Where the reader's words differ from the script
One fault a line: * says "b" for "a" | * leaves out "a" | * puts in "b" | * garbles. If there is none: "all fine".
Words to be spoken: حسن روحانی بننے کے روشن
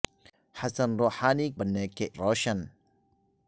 all fine